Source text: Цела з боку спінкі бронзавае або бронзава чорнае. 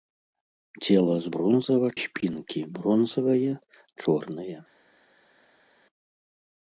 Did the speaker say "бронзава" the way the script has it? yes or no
no